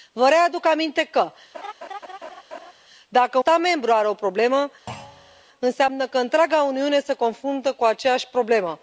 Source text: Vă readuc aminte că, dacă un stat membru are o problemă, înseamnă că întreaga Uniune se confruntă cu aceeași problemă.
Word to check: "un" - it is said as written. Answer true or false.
false